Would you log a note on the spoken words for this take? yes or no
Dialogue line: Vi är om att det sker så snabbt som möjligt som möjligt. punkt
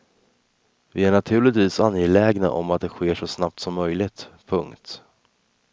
yes